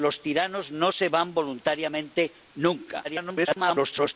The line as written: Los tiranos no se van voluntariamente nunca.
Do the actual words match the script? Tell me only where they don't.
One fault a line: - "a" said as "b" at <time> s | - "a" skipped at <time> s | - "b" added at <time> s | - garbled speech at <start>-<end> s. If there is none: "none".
- garbled speech at 3.0-4.1 s